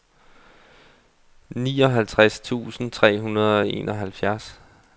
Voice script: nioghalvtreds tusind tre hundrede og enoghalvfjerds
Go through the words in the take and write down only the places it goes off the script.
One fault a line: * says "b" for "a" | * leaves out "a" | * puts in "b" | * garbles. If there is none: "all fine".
all fine